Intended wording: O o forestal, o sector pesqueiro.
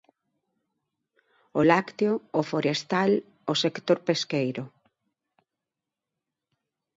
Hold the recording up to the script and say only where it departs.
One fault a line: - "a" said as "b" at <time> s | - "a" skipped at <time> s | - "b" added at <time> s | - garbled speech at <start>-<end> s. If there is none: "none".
- "lácteo" added at 1.7 s